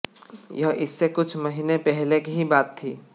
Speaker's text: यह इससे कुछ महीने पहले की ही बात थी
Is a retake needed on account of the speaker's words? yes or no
no